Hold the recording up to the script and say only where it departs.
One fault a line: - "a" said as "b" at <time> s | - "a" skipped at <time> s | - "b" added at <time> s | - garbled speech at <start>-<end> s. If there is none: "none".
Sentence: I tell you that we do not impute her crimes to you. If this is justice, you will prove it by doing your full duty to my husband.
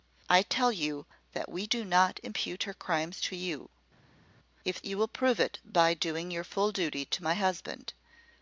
- "this is justice" skipped at 4.8 s